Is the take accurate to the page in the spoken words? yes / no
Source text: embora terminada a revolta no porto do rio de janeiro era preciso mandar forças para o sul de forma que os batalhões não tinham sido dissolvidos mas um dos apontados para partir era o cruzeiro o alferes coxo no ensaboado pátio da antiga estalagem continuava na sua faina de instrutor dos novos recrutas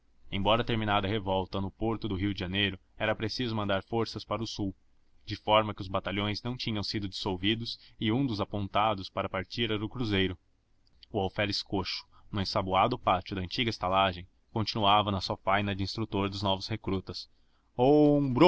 no